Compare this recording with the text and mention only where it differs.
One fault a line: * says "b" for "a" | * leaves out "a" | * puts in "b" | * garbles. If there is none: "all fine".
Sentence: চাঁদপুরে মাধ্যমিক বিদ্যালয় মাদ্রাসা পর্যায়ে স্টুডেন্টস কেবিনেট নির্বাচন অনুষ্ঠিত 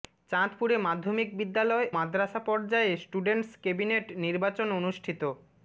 all fine